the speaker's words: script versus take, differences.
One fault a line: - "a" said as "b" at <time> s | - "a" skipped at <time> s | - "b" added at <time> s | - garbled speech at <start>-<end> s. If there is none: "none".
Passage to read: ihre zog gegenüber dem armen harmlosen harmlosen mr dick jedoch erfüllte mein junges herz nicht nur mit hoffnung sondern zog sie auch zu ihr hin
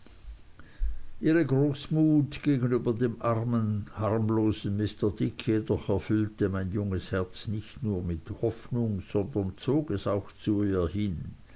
- "zog" said as "großmut" at 1.4 s
- "harmlosen" skipped at 4.8 s
- "sie" said as "es" at 9.9 s